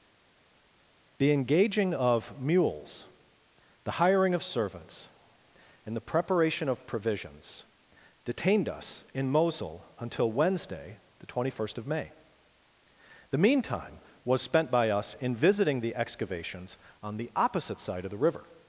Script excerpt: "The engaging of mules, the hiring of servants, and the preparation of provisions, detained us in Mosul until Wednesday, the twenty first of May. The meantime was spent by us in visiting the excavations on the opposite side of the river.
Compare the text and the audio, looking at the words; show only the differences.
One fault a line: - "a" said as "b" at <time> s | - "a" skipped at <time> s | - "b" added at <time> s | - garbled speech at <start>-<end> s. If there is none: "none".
none